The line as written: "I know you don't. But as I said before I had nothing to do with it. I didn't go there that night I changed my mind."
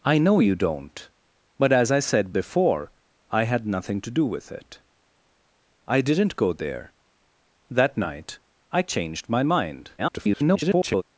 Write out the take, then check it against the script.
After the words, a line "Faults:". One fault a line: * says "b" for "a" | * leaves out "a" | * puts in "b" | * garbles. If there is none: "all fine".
"I know you don't. But as I said before I had nothing to do with it. I didn't go there that night I changed my mind." [garbled]
Faults:
* garbles